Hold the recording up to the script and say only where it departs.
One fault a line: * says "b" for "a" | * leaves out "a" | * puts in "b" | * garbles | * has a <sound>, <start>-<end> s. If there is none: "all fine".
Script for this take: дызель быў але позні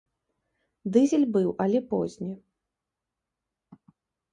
all fine